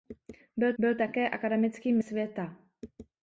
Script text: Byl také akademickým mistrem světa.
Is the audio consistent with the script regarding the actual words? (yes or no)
no